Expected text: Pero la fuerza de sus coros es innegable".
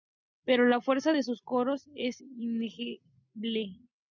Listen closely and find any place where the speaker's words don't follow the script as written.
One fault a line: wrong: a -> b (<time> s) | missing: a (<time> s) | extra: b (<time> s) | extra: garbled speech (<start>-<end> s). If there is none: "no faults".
no faults